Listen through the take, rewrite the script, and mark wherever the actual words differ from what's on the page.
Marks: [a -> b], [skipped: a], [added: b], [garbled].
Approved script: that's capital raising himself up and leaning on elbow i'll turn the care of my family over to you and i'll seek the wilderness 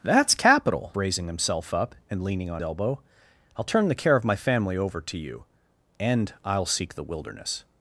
that's capital raising himself up and leaning on elbow i'll turn the care of my family over to you and i'll seek the wilderness